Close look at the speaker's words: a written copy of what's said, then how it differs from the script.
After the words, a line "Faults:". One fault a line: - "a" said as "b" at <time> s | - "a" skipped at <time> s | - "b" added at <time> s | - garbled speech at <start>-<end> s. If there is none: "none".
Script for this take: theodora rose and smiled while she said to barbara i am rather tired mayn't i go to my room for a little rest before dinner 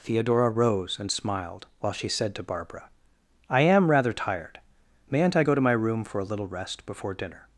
theodora rose and smiled while she said to barbara i am rather tired mayn't i go to my room for a little rest before dinner
Faults:
none